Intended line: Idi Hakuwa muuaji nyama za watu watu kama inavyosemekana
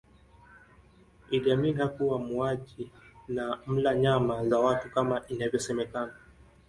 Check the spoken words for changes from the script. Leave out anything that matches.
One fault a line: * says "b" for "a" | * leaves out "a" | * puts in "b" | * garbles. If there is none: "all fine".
* puts in "Amin"
* puts in "na mla"
* leaves out "watu"